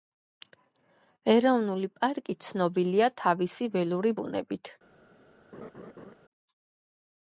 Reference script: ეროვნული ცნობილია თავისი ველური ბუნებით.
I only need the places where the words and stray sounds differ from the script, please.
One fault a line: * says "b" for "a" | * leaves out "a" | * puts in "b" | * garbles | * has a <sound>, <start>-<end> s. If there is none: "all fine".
* puts in "პარკი"
* has a laugh, 5.5-6.1 s